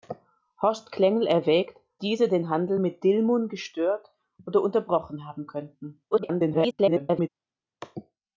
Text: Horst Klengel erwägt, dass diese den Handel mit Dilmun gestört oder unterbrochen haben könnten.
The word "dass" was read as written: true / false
false